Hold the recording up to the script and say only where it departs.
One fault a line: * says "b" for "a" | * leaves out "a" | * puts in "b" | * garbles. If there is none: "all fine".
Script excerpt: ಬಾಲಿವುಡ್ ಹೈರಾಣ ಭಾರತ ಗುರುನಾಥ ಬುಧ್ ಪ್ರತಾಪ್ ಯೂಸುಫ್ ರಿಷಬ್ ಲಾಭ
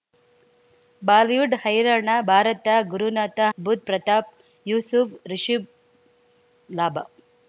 all fine